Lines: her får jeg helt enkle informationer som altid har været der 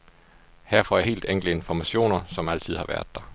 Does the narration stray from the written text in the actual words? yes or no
no